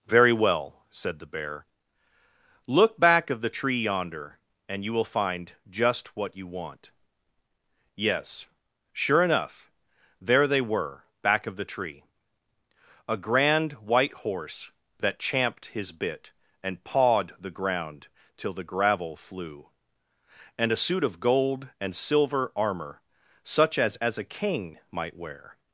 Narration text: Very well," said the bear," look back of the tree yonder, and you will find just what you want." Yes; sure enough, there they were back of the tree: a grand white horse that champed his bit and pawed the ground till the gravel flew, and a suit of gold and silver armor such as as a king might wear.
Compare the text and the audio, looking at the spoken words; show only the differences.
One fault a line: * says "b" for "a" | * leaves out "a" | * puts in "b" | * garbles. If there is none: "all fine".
all fine